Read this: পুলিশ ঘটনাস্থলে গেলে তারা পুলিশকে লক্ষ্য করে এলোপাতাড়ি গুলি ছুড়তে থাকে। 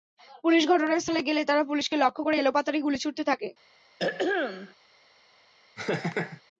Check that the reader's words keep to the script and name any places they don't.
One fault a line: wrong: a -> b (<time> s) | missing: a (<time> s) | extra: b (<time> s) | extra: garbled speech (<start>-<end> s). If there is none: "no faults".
no faults